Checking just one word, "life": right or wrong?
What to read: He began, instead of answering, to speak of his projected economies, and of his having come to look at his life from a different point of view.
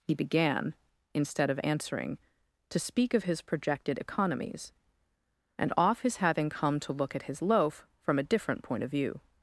wrong